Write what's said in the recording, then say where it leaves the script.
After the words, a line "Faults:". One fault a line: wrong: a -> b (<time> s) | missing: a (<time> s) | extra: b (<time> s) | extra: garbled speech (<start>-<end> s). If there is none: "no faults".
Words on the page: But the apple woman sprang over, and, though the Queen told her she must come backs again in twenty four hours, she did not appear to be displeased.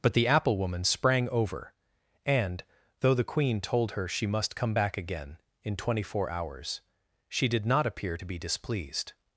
But the apple woman sprang over, and, though the Queen told her she must come back again in twenty four hours, she did not appear to be displeased.
Faults:
wrong: backs -> back (4.7 s)